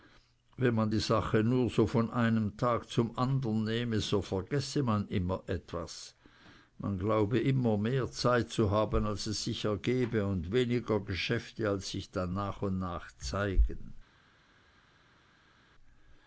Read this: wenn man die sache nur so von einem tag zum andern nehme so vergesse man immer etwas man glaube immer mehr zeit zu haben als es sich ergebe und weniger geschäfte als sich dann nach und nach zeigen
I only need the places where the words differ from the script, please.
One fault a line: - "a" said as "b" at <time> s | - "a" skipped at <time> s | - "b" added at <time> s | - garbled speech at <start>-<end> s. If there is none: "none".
none